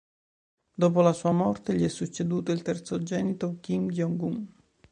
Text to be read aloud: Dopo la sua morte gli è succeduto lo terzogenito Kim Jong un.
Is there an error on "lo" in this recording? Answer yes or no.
yes